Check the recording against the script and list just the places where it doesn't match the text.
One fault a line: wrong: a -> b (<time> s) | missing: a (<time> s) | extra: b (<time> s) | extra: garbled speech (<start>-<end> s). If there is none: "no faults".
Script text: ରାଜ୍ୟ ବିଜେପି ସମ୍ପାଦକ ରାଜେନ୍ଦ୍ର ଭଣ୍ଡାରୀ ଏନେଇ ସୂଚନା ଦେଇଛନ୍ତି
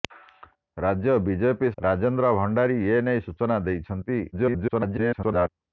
missing: ସମ୍ପାଦକ (1.7 s)
extra: garbled speech (4.3-5.5 s)